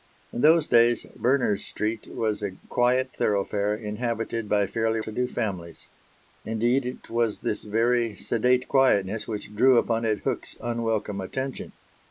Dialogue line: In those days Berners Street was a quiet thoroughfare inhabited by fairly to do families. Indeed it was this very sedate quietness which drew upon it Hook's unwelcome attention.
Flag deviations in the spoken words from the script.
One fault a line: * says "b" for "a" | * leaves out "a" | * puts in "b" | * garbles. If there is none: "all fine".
all fine